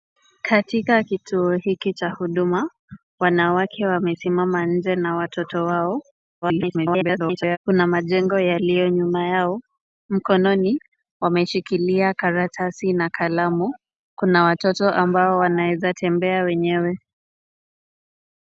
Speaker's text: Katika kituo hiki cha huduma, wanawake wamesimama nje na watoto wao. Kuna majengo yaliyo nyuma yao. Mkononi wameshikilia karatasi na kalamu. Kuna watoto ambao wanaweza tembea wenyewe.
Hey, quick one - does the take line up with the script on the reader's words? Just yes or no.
no